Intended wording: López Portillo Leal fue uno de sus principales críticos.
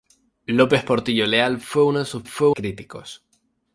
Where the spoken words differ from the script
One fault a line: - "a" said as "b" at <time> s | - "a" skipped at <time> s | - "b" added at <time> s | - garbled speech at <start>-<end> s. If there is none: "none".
- "principales" said as "fue" at 2.2 s